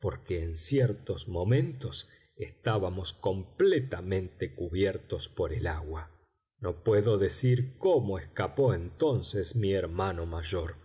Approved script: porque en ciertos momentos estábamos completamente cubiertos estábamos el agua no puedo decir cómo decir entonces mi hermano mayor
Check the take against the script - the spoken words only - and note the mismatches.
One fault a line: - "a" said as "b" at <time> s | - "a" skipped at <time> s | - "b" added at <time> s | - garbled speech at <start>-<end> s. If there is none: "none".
- "estábamos" said as "por" at 5.3 s
- "decir" said as "escapó" at 8.2 s